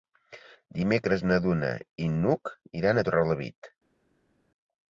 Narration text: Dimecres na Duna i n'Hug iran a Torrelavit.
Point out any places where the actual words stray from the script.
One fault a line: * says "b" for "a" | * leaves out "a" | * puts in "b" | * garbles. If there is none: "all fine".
all fine